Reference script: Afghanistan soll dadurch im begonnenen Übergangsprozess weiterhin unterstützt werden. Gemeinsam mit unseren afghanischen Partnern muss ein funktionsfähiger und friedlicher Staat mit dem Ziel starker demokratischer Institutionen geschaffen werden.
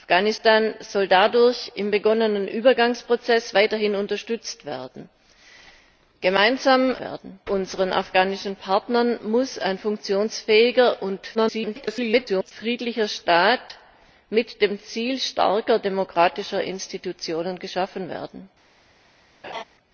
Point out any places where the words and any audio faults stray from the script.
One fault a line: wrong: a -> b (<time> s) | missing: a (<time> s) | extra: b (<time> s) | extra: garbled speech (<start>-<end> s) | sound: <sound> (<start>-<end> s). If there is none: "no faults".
wrong: mit -> werden (7.0 s)
extra: garbled speech (11.3-12.5 s)
sound: laugh (19.4-19.6 s)